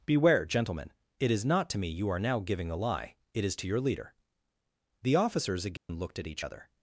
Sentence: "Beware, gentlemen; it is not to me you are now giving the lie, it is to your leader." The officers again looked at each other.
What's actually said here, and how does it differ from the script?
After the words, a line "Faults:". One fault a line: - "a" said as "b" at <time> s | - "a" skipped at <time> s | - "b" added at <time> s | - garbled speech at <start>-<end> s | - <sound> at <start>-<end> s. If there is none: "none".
"Beware, gentlemen; it is not to me you are now giving a lie, it is to your leader." The officers again looked at each other.
Faults:
- "the" said as "a" at 2.7 s
- dropout at 5.8-5.9 s